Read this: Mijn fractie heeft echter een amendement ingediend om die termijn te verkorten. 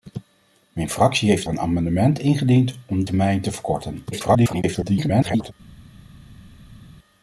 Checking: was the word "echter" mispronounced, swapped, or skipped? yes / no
yes